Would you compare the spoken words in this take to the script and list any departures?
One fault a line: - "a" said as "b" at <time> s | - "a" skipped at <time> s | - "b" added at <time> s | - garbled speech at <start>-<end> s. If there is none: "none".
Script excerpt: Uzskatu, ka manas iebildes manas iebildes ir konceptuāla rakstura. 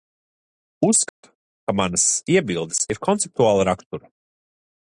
- "manas iebildes" skipped at 2.8 s